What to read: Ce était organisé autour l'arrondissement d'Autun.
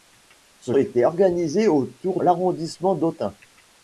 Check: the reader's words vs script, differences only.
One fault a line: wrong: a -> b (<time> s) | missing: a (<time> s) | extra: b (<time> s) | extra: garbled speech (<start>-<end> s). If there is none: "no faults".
no faults